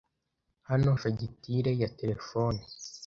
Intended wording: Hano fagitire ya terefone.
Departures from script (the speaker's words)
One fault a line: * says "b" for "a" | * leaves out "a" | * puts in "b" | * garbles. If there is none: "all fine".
all fine